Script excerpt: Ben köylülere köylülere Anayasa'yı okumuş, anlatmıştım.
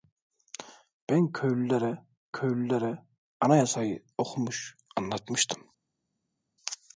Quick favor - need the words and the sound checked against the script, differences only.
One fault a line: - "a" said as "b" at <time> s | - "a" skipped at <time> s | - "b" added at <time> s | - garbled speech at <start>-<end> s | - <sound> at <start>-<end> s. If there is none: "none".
none